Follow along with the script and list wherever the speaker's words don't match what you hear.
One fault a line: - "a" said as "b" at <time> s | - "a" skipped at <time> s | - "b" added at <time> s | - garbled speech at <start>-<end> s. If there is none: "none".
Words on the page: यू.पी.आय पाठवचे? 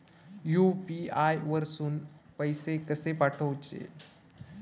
- "वरसून पैसे कसे" added at 1.4 s